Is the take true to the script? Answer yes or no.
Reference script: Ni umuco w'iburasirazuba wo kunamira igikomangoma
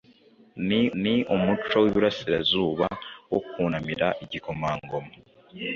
no